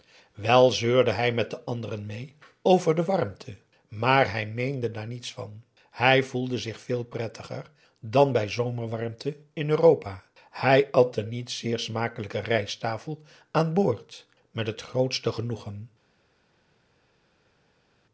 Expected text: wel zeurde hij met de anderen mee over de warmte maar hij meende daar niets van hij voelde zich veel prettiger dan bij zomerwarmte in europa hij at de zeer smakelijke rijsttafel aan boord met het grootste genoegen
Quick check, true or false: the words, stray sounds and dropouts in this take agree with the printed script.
false